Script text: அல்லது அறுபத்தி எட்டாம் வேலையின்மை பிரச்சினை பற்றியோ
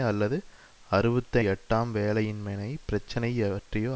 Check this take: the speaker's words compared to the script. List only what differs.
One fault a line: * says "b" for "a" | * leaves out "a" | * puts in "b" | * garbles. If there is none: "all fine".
all fine